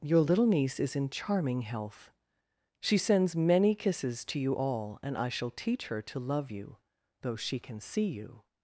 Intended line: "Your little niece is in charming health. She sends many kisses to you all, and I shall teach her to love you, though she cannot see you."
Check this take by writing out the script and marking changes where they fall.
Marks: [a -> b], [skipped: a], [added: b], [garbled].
"Your little niece is in charming health. She sends many kisses to you all, and I shall teach her to love you, though she [cannot -> can] see you."